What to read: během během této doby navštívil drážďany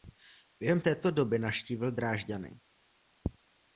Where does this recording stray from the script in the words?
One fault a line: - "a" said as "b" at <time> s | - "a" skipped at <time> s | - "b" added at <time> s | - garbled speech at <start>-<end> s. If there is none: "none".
- "během" skipped at 0.8 s